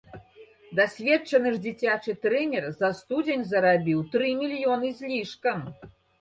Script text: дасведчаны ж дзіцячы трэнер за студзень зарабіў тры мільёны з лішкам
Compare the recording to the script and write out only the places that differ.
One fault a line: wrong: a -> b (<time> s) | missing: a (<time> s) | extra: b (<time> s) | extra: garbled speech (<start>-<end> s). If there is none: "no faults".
no faults